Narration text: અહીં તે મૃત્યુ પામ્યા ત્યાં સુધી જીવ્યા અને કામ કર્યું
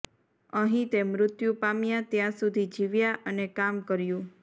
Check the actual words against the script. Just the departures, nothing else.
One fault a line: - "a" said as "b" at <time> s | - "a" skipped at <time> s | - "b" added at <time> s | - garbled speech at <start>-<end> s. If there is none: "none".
none